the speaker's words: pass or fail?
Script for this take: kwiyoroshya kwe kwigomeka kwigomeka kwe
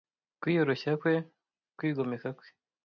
fail